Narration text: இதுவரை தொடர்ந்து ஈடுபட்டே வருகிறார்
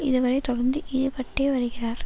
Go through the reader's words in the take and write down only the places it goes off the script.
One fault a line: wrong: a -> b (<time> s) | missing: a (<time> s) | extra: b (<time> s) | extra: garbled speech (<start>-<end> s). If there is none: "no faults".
no faults